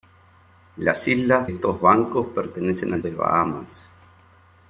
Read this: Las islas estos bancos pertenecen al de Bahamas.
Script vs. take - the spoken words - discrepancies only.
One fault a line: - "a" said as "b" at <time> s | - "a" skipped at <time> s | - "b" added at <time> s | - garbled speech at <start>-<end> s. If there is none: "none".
none